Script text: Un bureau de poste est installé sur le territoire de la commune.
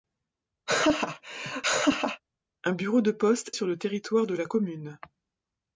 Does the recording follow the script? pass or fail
fail